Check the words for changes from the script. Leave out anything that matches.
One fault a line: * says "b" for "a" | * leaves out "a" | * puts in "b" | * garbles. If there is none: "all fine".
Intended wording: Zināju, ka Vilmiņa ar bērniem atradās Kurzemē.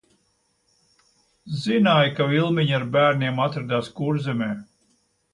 all fine